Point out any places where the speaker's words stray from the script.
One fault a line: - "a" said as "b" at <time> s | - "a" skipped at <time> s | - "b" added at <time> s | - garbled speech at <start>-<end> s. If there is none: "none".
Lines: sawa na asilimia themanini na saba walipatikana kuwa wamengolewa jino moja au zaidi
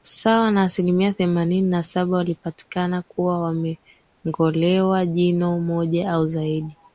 none